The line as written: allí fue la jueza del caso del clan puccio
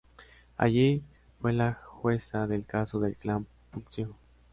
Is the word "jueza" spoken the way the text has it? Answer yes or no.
yes